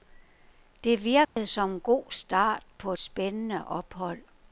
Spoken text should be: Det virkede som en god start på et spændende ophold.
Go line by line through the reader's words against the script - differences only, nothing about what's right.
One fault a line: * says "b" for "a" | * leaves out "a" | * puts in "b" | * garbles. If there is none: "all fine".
* leaves out "et"